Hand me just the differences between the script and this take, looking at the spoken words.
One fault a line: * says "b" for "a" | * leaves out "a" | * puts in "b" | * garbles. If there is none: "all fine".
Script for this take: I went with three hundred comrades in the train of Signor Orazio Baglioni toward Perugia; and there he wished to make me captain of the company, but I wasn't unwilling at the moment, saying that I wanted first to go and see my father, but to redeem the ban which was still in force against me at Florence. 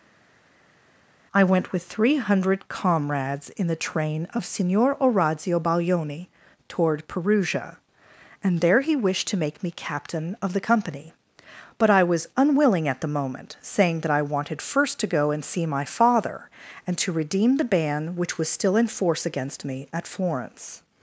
* says "was" for "wasn't"
* says "and" for "but"